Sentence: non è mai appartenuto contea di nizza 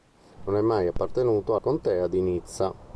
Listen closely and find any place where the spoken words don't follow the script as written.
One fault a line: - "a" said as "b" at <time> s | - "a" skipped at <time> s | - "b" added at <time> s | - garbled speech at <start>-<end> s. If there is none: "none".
none